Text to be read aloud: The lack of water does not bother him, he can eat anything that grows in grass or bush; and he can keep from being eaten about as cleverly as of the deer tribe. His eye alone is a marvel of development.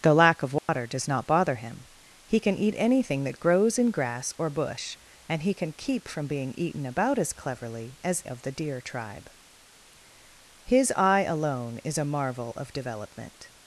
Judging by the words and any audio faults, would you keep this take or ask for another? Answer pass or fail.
fail